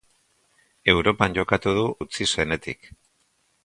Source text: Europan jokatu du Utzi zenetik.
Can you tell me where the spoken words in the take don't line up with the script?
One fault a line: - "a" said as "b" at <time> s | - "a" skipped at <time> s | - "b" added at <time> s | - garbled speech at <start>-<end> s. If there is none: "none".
none